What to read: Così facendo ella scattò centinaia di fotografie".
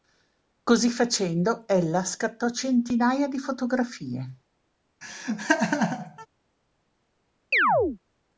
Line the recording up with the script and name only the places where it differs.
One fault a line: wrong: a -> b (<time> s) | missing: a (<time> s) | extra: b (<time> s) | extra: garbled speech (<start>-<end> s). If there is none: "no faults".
no faults